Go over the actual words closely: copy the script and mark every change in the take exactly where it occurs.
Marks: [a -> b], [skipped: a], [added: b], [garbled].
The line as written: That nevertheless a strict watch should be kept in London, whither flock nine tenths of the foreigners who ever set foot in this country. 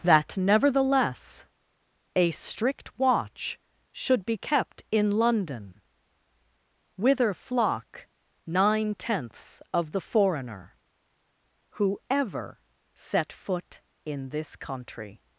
That nevertheless a strict watch should be kept in London, whither flock nine tenths of the [foreigners -> foreigner] who ever set foot in this country.